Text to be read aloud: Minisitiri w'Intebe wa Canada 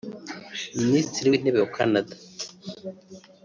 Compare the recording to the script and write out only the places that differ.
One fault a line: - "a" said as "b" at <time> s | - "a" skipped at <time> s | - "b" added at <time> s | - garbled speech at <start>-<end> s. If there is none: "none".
none